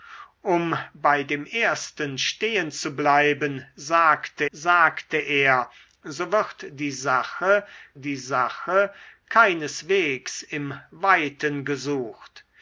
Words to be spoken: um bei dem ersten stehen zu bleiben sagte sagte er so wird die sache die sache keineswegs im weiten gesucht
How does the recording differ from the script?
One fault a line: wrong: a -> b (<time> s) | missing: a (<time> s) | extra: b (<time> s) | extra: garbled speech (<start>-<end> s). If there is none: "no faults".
no faults